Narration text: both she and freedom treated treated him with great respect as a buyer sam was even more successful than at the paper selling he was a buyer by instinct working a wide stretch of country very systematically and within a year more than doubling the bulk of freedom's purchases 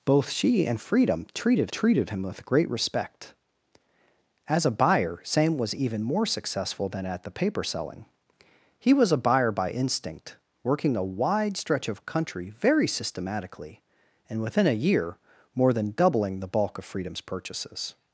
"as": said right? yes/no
yes